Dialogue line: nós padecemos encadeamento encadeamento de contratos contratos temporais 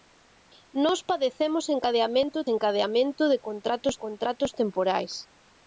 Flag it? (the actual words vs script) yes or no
no